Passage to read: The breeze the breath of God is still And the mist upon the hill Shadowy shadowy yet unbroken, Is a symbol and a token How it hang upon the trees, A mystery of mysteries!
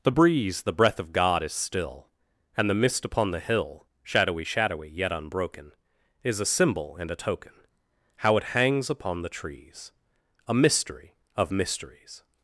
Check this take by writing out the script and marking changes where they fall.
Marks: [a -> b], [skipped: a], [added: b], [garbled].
The breeze the breath of God is still And the mist upon the hill Shadowy shadowy yet unbroken, Is a symbol and a token How it [hang -> hangs] upon the trees, A mystery of mysteries!